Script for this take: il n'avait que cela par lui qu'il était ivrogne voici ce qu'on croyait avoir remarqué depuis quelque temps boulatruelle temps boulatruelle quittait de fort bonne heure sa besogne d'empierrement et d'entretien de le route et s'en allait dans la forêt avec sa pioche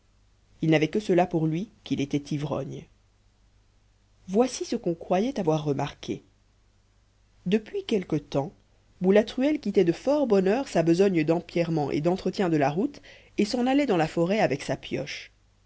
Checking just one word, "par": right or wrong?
wrong